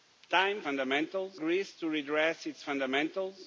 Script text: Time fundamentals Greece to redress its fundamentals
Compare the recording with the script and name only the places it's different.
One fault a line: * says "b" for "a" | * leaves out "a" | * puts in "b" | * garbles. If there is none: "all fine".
all fine